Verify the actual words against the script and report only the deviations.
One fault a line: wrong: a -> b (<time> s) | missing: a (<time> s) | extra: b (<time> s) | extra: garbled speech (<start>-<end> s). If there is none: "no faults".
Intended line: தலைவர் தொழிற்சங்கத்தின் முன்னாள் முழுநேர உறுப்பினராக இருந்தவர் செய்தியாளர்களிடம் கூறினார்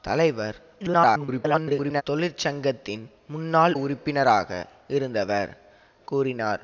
extra: garbled speech (0.8-2.0 s)
missing: முழுநேர (3.7 s)
missing: செய்தியாளர்களிடம் (5.5 s)